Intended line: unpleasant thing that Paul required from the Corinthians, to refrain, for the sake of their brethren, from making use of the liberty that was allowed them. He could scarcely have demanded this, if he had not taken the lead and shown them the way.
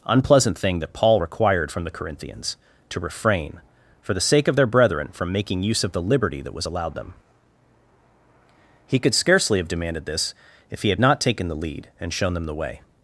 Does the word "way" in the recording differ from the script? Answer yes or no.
no